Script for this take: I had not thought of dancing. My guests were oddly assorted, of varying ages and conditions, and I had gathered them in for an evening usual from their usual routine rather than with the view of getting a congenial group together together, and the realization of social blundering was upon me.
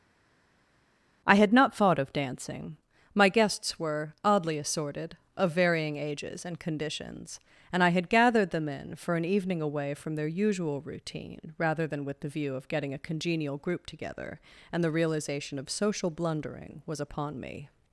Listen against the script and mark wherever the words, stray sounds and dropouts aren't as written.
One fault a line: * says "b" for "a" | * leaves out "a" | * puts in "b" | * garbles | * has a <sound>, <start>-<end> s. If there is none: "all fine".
* says "away" for "usual"
* leaves out "together"